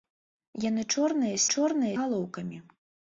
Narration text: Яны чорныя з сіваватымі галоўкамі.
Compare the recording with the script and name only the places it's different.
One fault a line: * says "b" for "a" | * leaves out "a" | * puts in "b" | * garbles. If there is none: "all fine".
* says "чорныя" for "сіваватымі"